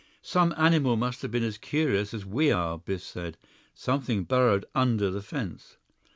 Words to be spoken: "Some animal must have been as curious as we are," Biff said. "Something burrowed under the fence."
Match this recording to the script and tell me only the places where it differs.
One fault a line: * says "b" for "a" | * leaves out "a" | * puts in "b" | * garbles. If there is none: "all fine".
all fine